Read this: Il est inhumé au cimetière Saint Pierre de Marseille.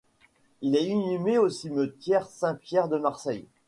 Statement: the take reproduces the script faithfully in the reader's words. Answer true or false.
true